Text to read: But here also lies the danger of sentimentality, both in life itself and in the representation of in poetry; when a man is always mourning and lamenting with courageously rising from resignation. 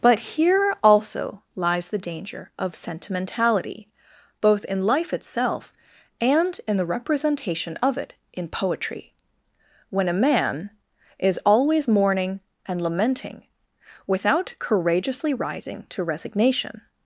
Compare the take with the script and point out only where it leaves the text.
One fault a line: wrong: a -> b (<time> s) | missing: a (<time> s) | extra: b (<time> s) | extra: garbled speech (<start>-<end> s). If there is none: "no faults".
extra: it (8.0 s)
wrong: with -> without (14.1 s)
wrong: from -> to (15.9 s)